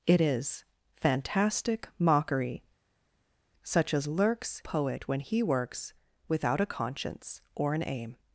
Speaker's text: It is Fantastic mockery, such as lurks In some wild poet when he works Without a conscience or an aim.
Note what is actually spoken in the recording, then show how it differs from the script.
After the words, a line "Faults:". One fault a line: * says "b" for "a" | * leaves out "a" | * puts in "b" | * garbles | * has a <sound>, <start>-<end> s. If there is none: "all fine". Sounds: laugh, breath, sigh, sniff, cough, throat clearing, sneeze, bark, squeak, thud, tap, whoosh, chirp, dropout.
It is Fantastic mockery, such as lurks Poet when he works Without a conscience or an aim.
Faults:
* leaves out "In some wild"